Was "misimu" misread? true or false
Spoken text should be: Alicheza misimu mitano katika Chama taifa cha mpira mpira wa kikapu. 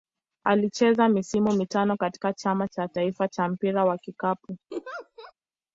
false